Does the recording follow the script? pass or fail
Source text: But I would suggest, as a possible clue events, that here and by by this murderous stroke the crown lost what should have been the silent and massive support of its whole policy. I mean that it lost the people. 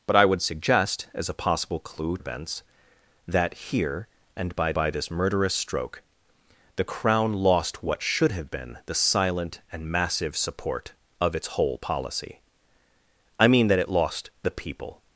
pass